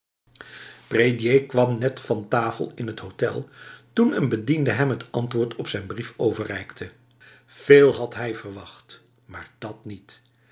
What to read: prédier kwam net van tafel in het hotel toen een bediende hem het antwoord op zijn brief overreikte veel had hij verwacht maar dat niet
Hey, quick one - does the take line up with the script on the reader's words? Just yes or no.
yes